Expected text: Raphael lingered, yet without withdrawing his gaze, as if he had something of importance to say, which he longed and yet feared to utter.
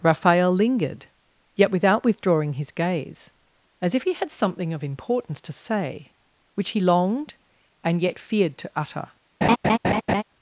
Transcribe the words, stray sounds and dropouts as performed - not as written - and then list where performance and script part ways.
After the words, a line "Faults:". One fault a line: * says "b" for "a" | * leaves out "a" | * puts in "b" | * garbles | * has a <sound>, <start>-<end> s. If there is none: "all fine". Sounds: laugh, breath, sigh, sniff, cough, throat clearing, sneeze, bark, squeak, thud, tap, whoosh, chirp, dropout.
Raphael lingered, yet without withdrawing his gaze, as if he had something of importance to say, which he longed and yet feared to utter.
Faults:
* has a laugh, 9.4-10.2 s